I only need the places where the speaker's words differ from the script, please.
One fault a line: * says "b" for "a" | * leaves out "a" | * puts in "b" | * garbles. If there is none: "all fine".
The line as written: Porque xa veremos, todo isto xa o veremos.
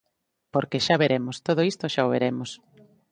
all fine